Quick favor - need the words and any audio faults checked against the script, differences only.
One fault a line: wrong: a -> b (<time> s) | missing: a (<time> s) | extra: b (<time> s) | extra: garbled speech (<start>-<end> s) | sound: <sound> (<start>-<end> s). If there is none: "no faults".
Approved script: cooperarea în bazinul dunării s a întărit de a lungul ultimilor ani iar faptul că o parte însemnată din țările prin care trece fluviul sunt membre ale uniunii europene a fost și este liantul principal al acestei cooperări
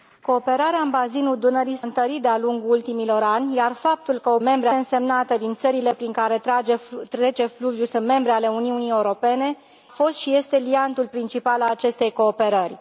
missing: a (1.9 s)
wrong: parte -> membre (4.4 s)
missing: a (9.6 s)